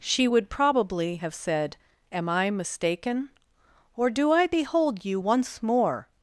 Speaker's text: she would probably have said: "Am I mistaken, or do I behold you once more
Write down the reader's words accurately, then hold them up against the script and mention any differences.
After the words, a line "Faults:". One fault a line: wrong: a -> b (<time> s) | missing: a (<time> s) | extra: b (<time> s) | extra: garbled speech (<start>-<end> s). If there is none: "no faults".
she would probably have said: "Am I mistaken, or do I behold you once more
Faults:
no faults